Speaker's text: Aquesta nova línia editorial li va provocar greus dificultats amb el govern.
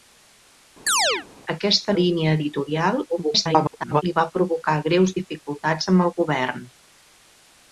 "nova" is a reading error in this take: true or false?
true